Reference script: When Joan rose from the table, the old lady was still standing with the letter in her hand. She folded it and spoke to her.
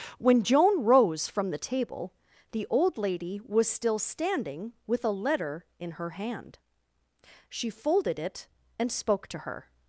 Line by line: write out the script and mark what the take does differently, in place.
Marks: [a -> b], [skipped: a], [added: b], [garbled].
When Joan rose from the table, the old lady was still standing with [the -> a] letter in her hand. She folded it and spoke to her.